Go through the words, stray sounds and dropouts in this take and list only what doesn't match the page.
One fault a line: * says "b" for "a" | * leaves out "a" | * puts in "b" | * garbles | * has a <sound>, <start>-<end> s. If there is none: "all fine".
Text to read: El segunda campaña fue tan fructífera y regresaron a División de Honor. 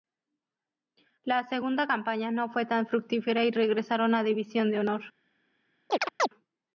* says "La" for "El"
* puts in "no"
* has a chirp, 5.9-6.3 s